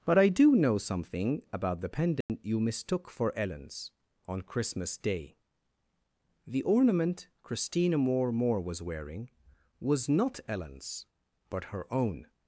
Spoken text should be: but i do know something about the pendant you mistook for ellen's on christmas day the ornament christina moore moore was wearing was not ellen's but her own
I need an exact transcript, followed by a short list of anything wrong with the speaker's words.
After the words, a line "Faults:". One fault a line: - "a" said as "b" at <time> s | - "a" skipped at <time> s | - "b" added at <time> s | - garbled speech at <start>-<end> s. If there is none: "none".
but i do know something about the pendant you mistook for ellen's on christmas day the ornament christina moore moore was wearing was not ellen's but her own
Faults:
none